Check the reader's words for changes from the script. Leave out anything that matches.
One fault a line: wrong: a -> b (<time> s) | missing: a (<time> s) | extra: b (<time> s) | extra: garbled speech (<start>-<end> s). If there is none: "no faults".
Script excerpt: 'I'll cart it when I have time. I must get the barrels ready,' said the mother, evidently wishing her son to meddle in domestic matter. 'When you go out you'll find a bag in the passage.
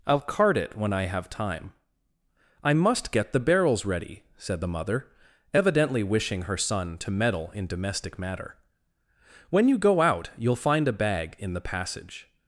no faults